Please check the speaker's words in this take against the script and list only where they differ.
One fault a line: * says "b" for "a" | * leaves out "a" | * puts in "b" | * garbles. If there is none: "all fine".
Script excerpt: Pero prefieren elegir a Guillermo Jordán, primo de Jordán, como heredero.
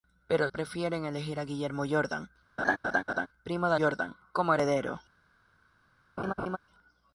all fine